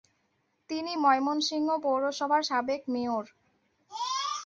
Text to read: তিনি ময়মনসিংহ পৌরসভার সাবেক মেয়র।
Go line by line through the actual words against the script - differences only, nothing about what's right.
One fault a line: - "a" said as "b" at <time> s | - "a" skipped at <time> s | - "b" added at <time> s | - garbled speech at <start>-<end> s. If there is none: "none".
none